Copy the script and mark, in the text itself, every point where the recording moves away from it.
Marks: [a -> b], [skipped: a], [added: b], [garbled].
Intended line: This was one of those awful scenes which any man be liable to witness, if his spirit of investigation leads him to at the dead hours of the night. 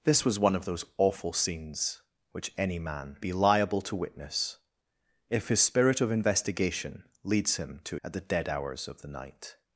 This was one of those awful scenes which any man be liable to witness, if his spirit of investigation leads him to at the dead hours of the night.